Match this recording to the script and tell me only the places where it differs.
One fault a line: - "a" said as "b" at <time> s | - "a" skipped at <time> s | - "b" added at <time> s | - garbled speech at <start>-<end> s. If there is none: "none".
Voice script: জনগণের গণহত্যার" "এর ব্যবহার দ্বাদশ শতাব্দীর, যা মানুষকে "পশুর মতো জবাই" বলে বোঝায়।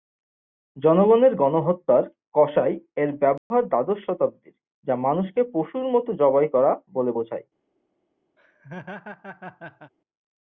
- "কসাই" added at 2.4 s
- "করা" added at 6.5 s